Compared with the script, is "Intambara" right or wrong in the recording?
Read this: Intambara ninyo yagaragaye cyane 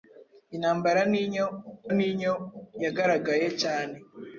right